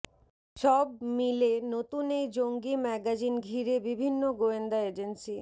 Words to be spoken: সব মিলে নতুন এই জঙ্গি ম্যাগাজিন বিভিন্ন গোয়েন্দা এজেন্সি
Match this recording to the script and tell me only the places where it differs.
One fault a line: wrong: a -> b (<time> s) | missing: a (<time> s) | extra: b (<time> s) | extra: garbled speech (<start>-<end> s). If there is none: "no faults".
extra: ঘিরে (3.4 s)